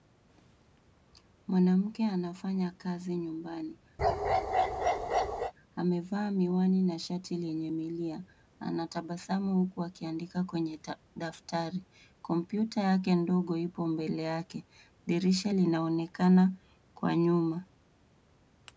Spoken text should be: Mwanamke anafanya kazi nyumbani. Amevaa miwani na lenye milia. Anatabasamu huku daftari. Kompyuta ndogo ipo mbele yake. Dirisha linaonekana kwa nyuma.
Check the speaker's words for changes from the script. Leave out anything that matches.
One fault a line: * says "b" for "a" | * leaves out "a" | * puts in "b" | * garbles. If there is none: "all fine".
* puts in "shati"
* puts in "akiandika kwenye"
* puts in "yake"